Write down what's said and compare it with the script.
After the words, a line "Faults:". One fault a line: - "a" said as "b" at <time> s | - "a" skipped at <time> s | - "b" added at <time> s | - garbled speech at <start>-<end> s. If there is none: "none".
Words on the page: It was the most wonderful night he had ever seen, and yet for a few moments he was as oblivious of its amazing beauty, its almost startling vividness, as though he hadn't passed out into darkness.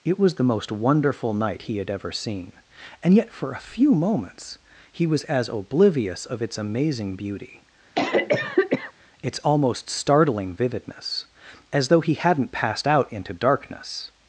It was the most wonderful night he had ever seen, and yet for a few moments he was as oblivious of its amazing beauty, its almost startling vividness, as though he hadn't passed out into darkness.
Faults:
none